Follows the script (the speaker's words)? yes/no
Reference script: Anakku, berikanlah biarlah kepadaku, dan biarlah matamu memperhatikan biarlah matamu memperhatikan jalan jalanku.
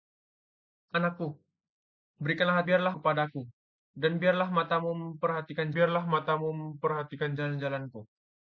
yes